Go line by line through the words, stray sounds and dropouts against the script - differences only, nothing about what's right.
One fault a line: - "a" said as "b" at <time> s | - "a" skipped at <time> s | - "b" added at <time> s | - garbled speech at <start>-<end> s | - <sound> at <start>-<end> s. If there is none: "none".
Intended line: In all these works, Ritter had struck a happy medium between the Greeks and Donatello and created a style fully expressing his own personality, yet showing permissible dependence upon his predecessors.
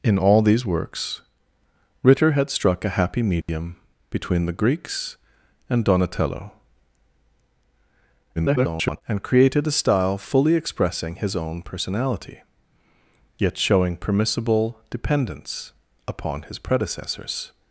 - dropout at 3.4-3.5 s
- garbled speech at 8.4-9.0 s